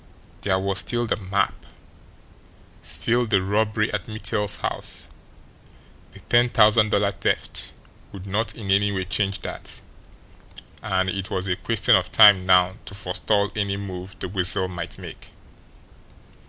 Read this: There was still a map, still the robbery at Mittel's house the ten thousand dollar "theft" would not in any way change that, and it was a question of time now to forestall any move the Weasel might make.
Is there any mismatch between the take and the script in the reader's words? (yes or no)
yes